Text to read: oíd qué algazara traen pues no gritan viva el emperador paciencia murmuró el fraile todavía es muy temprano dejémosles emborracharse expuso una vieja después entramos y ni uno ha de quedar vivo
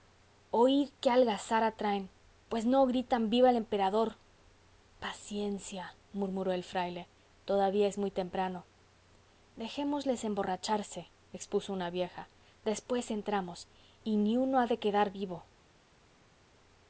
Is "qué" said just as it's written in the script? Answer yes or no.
yes